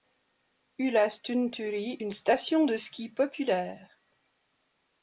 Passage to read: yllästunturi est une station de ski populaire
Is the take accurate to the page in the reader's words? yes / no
no